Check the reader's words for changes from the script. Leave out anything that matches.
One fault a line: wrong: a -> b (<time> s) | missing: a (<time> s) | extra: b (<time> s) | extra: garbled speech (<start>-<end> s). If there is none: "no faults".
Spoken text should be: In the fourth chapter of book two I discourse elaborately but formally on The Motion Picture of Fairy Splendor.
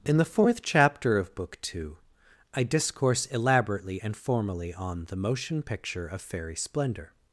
wrong: but -> and (4.0 s)